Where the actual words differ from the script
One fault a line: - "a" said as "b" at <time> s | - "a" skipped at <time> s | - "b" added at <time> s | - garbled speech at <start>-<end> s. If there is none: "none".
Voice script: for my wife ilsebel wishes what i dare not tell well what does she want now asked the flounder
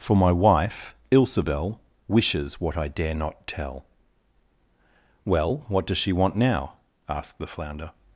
none